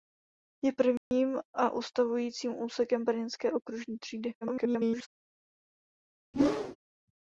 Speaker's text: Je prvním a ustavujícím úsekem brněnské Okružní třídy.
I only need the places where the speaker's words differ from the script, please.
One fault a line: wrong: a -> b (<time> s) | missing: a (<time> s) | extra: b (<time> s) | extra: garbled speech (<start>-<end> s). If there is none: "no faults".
extra: garbled speech (4.4-5.1 s)